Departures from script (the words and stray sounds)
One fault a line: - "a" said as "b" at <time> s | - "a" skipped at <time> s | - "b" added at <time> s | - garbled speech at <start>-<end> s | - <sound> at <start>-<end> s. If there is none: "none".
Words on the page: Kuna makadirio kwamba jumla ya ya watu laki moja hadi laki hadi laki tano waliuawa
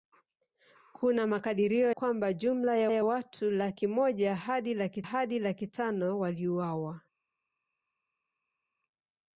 none